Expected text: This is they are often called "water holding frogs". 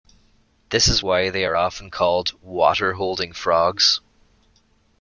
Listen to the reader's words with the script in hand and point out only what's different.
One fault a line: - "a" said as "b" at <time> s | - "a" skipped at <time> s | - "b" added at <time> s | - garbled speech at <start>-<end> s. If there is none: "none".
- "why" added at 1.0 s